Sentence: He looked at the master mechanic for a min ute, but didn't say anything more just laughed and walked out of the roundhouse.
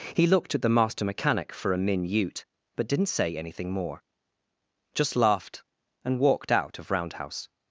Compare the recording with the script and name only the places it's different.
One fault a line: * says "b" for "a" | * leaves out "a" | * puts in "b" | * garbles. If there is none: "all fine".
* leaves out "the"